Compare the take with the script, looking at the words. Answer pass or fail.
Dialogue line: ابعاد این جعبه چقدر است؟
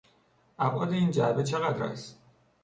pass